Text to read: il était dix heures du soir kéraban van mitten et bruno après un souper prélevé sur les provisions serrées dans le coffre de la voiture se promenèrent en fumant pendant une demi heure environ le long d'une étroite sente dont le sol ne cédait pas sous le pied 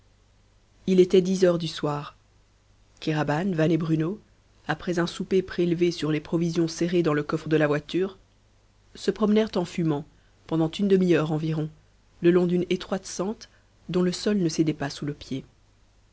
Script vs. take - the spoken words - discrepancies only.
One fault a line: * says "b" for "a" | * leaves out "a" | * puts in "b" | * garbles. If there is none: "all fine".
* leaves out "mitten"